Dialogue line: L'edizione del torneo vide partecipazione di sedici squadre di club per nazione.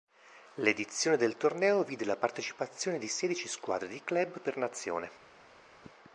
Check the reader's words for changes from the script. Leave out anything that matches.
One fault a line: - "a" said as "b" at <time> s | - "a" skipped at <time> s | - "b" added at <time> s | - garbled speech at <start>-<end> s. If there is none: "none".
- "la" added at 2.1 s